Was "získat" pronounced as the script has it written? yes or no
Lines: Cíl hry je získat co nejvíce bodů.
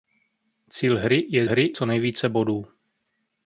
no